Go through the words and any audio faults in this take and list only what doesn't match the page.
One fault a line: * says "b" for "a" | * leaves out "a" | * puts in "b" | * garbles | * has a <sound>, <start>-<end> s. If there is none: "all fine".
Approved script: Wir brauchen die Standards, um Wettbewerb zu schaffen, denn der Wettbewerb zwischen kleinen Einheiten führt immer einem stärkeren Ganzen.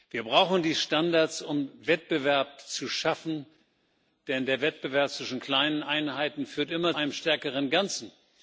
all fine